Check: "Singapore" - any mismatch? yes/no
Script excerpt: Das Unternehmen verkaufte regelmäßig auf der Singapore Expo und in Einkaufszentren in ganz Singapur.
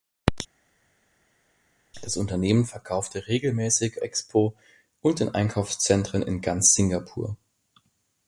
yes